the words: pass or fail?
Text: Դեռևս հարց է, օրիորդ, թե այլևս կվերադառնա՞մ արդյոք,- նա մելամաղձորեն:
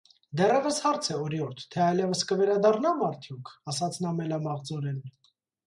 fail